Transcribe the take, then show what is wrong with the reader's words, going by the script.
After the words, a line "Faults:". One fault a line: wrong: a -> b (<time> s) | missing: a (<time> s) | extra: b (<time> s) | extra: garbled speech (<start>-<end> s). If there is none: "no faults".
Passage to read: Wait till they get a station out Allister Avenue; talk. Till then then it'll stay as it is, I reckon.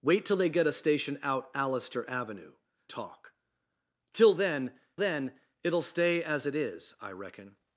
Wait till they get a station out Allister Avenue; talk. Till then then it'll stay as it is, I reckon.
Faults:
no faults